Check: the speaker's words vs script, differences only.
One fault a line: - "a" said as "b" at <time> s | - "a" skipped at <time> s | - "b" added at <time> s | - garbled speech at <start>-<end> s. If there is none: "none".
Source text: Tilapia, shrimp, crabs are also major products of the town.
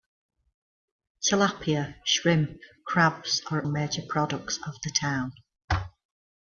- "also" skipped at 3.7 s